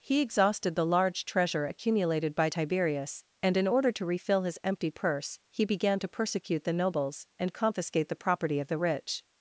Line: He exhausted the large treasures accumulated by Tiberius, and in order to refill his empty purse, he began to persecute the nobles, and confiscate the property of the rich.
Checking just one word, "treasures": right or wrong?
wrong